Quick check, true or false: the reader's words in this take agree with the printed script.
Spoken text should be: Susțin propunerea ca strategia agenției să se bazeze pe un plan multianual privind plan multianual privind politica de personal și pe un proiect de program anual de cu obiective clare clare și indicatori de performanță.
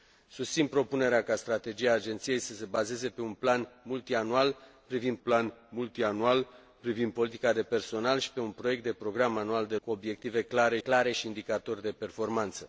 true